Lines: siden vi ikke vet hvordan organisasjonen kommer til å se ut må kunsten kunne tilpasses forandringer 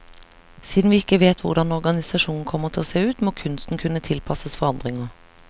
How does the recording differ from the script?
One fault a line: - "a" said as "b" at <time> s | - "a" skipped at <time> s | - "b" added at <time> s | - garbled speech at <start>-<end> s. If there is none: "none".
none